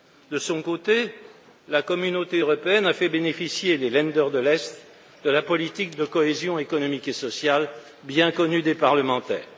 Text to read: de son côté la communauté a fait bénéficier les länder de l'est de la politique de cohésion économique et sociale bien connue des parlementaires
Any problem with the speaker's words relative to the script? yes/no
yes